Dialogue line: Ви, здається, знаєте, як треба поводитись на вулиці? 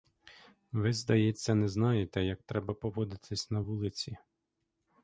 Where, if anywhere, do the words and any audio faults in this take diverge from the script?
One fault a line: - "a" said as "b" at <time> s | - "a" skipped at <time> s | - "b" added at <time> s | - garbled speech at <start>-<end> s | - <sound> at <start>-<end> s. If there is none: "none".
- "не" added at 1.6 s